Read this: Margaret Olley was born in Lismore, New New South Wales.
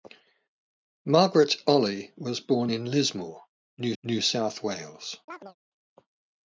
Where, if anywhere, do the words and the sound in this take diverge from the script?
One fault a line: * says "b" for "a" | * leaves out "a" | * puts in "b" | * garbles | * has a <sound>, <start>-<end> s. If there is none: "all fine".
* has a chirp, 5.3-5.6 s